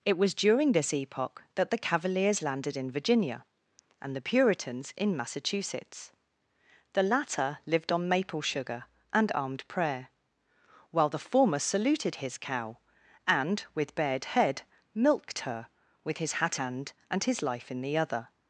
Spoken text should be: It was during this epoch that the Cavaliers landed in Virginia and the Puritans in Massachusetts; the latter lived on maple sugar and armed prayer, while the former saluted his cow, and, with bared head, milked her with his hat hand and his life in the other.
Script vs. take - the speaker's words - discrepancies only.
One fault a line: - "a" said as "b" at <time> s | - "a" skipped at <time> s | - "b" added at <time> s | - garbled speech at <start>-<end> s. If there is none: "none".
none